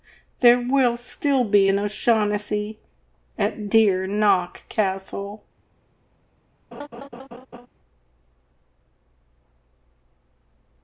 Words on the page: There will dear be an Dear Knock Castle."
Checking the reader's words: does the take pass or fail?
fail